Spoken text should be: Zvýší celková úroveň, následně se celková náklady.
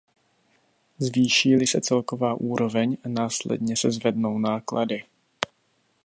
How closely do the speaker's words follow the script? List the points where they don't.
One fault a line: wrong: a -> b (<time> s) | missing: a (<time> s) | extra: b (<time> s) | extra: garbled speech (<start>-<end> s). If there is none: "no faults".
extra: li se (1.5 s)
wrong: celková -> zvednou (3.9 s)